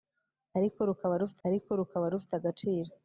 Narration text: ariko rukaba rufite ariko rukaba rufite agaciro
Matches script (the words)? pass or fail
pass